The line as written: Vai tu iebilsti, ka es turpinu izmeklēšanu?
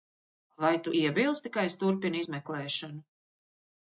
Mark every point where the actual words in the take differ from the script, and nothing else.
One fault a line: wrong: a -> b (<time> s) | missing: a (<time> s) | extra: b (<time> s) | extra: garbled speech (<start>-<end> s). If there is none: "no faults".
no faults